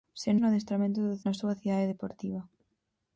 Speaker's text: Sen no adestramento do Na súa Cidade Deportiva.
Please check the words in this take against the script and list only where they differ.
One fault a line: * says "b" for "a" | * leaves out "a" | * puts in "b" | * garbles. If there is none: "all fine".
all fine